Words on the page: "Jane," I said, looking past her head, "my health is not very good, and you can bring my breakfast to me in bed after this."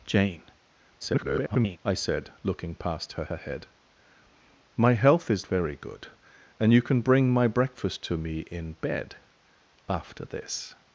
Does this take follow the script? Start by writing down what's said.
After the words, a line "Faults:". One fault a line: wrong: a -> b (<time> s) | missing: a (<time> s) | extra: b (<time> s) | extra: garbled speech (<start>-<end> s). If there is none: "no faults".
"Jane," [garbled] I said, looking past her her head, "my health is very good, and you can bring my breakfast to me in bed after this."
Faults:
extra: garbled speech (1.0-1.8 s)
extra: her (3.3 s)
missing: not (5.5 s)